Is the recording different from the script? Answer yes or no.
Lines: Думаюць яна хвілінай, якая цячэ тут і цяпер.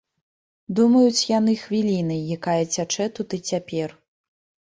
yes